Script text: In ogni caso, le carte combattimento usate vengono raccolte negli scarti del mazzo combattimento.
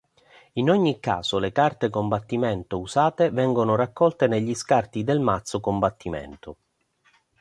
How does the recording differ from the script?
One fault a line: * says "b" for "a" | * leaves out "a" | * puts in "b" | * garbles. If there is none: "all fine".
all fine